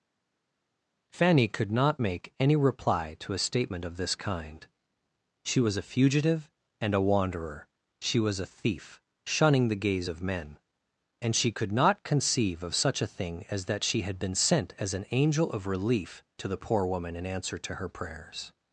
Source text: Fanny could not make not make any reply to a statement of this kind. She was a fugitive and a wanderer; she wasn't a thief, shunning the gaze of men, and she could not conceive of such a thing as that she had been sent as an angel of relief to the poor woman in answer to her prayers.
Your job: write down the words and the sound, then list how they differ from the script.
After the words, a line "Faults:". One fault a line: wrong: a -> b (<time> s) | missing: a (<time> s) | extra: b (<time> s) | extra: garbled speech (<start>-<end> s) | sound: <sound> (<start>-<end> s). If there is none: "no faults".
Fanny could not make any reply to a statement of this kind. She was a fugitive and a wanderer; she was a thief, shunning the gaze of men, and she could not conceive of such a thing as that she had been sent as an angel of relief to the poor woman in answer to her prayers.
Faults:
missing: not make (2.3 s)
wrong: wasn't -> was (8.2 s)